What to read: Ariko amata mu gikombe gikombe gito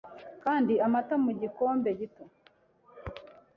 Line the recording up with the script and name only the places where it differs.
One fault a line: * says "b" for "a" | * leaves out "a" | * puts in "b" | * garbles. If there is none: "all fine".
* says "Kandi" for "Ariko"
* leaves out "gikombe"